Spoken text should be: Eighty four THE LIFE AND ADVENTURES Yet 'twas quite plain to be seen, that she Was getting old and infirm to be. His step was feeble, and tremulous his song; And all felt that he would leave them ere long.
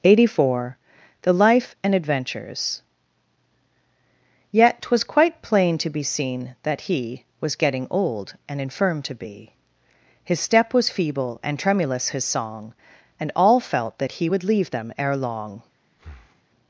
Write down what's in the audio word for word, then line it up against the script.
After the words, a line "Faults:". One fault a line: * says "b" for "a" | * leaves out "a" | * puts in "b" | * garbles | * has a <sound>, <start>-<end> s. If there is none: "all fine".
Eighty four THE LIFE AND ADVENTURES Yet 'twas quite plain to be seen, that he Was getting old and infirm to be. His step was feeble, and tremulous his song; And all felt that he would leave them ere long.
Faults:
* says "he" for "she"
* has a breath, 15.9-16.4 s